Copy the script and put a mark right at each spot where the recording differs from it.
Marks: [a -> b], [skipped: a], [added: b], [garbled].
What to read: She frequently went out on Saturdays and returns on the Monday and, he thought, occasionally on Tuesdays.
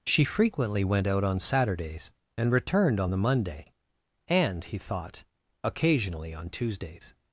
She frequently went out on Saturdays and [returns -> returned] on the Monday and, he thought, occasionally on Tuesdays.